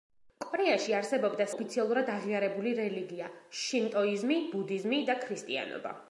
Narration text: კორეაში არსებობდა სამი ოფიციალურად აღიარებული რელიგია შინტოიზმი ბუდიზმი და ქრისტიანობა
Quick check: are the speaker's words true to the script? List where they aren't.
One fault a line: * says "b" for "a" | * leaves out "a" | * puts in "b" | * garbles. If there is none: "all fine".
* leaves out "სამი"